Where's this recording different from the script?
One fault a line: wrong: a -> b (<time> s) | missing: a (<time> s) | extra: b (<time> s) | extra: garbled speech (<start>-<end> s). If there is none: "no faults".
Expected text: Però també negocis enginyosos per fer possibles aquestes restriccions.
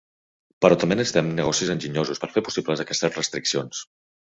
extra: necessitem (1.0 s)